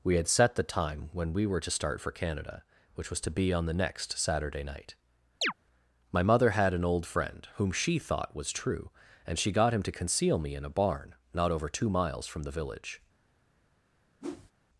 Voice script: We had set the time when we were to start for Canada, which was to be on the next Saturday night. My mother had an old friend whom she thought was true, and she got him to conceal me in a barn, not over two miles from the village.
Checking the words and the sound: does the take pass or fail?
fail